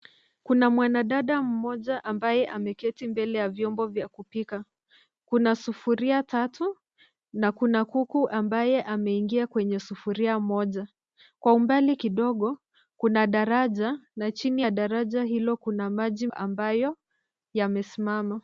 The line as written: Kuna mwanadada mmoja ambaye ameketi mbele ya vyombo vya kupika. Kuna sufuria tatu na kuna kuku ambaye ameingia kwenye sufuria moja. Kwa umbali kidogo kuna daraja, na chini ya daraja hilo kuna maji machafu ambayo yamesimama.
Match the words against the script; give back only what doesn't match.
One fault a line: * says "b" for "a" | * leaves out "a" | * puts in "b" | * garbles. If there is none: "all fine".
* leaves out "machafu"